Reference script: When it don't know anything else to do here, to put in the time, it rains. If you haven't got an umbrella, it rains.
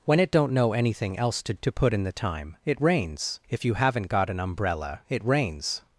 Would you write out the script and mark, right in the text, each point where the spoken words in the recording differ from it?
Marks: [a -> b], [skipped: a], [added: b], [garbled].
When it don't know anything else to [skipped: do here,] to put in the time, it rains. If you haven't got an umbrella, it rains.